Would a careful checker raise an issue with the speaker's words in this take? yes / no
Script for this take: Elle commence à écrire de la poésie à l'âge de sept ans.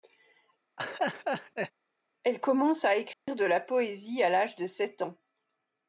no